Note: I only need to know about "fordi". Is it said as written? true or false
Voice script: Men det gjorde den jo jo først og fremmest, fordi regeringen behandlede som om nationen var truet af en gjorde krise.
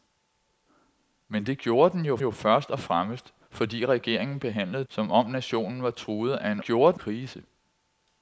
true